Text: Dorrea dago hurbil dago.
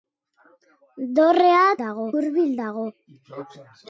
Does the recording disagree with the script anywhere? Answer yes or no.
no